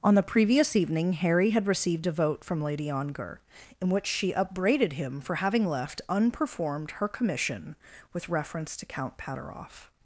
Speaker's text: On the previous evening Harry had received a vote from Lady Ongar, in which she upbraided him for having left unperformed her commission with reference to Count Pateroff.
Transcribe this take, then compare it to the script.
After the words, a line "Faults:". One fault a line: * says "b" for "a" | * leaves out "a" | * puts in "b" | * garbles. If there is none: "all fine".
On the previous evening Harry had received a vote from Lady Ongar, in which she upbraided him for having left unperformed her commission with reference to Count Pateroff.
Faults:
all fine